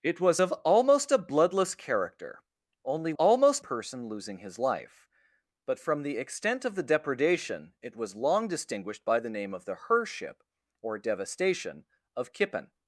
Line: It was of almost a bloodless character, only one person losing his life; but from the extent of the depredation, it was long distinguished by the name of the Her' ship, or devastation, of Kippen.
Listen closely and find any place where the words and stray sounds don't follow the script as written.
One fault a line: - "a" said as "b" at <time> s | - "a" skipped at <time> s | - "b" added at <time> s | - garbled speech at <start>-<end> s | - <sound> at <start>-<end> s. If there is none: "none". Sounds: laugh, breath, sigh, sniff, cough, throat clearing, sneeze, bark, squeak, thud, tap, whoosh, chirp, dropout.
- "one" said as "almost" at 3.2 s